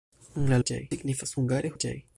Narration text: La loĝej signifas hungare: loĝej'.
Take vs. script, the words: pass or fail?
pass